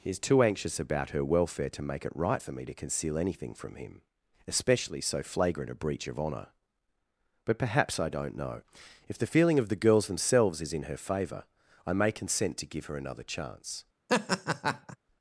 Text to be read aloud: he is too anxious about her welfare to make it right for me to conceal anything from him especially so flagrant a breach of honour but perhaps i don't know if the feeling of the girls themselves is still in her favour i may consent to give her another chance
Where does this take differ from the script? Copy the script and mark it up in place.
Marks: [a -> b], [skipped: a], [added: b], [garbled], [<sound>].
he is too anxious about her welfare to make it right for me to conceal anything from him especially so flagrant a breach of honour but perhaps i don't know if the feeling of the girls themselves is [skipped: still] in her favour i may consent to give her another chance [laugh]